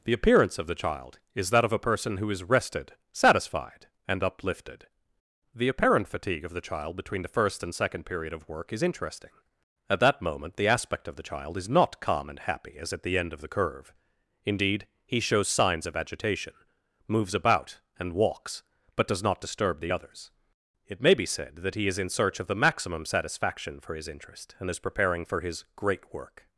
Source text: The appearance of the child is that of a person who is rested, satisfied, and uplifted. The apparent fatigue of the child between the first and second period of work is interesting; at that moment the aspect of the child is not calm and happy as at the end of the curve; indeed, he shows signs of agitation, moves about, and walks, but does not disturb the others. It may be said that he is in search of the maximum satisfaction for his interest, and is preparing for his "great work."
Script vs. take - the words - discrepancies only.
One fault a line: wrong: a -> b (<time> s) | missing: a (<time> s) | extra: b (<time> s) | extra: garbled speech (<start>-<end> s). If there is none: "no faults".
no faults